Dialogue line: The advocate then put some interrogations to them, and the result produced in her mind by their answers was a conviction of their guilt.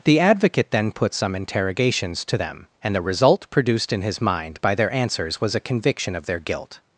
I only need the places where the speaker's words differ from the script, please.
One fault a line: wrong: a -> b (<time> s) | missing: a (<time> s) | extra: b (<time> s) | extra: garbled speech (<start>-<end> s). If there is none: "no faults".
wrong: her -> his (4.0 s)